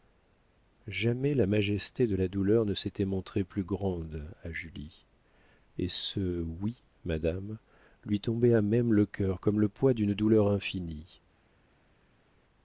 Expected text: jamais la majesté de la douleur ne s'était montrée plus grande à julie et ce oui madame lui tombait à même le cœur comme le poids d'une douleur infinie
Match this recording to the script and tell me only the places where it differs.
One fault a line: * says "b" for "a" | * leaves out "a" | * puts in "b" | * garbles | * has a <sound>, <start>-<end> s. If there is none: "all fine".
all fine